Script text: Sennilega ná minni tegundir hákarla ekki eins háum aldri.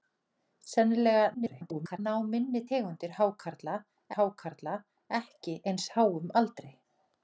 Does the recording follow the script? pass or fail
fail